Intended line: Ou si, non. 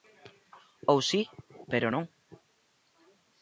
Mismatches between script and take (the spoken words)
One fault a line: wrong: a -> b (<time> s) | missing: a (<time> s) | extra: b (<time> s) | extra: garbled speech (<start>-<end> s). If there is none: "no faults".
extra: pero (1.7 s)